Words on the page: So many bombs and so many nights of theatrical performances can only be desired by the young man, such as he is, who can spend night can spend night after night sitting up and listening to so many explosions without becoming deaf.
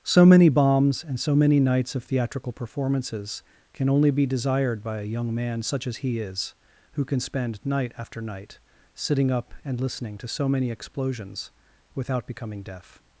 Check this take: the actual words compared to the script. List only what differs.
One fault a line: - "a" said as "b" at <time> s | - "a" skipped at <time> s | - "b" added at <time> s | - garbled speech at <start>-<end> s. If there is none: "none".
- "the" said as "a" at 5.0 s
- "can spend night" skipped at 7.9 s